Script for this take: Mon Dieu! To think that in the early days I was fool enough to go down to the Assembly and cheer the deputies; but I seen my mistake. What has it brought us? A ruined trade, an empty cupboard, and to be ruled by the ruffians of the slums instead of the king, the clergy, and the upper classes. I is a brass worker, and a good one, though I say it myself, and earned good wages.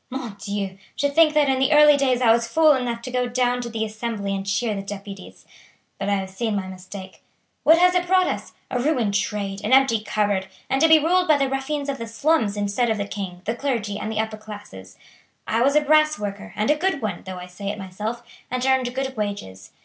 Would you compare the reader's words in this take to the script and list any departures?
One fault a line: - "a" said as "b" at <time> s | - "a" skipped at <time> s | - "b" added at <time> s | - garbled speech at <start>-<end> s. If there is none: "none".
- "have" added at 6.1 s
- "is" said as "was" at 15.6 s